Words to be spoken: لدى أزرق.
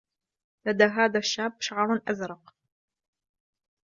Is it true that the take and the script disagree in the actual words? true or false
true